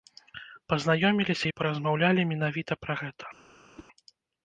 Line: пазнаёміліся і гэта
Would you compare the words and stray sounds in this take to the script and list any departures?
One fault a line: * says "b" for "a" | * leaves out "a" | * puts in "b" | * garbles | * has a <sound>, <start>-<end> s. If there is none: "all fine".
* puts in "паразмаўлялі менавіта пра"
* has a whoosh, 3.7-3.9 s